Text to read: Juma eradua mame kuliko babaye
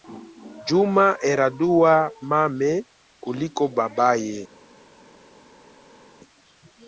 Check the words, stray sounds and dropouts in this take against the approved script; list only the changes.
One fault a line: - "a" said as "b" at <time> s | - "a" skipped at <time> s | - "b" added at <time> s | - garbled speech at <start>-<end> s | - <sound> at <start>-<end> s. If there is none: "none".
none